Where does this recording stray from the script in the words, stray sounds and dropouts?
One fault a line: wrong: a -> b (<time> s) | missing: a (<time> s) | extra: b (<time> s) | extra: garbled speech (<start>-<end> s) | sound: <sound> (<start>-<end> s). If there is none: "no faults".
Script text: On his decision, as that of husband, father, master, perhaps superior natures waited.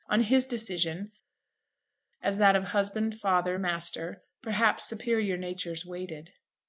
no faults